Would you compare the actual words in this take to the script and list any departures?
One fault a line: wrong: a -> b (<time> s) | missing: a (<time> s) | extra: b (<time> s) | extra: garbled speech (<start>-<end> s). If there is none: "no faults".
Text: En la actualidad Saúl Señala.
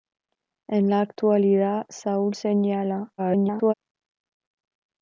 extra: garbled speech (3.2-3.7 s)